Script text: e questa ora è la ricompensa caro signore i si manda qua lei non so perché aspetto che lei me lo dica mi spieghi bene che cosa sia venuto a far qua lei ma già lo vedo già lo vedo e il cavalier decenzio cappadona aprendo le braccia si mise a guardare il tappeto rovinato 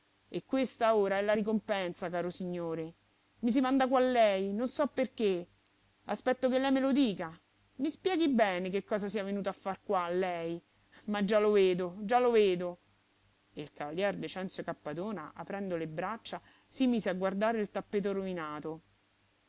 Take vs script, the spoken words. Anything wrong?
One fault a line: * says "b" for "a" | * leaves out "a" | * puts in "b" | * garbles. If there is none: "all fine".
all fine